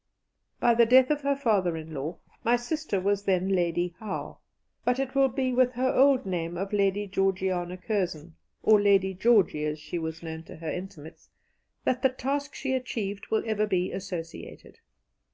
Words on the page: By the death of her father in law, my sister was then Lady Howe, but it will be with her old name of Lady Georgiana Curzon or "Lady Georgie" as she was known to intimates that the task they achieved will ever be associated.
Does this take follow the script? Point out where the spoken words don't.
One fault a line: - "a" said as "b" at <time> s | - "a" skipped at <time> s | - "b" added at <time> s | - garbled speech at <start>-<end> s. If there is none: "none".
- "her" added at 10.6 s
- "they" said as "she" at 12.6 s